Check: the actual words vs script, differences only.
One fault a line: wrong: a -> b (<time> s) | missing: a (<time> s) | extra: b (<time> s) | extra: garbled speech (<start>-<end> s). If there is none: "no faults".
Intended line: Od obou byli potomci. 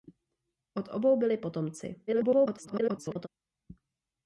extra: garbled speech (2.1-3.3 s)